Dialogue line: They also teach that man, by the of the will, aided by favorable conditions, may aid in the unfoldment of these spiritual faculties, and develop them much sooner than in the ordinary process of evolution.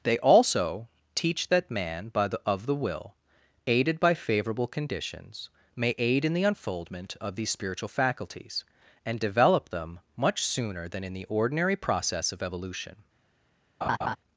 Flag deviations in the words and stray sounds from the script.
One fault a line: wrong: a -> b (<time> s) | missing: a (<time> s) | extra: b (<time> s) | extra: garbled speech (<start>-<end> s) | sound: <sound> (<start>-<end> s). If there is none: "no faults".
sound: laugh (13.8-14.2 s)